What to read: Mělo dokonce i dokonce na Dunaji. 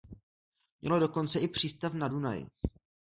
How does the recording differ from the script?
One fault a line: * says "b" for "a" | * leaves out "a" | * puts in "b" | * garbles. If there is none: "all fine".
* says "přístav" for "dokonce"